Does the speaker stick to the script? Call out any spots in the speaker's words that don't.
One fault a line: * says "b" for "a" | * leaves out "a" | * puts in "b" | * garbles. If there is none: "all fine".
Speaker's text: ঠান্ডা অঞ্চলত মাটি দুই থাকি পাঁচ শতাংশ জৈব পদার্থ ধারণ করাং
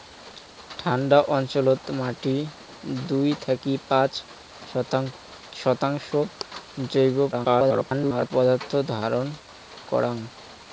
* garbles